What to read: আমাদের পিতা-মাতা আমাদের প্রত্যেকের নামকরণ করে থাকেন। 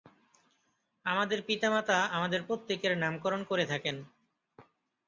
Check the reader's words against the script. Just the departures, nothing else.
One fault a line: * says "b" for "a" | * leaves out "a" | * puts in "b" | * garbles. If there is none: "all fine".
all fine